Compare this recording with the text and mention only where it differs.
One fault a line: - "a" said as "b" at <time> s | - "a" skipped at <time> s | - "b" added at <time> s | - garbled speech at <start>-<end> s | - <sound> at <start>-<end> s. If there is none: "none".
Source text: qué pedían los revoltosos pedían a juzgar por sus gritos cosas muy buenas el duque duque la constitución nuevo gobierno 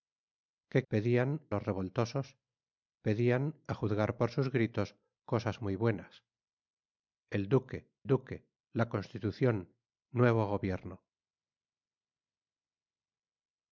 none